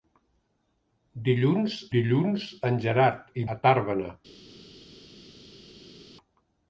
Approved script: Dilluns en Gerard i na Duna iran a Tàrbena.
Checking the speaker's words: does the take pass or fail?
fail